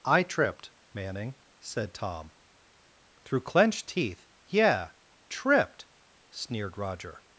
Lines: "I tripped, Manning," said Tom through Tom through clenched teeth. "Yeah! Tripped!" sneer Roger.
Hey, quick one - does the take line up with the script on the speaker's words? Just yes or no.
no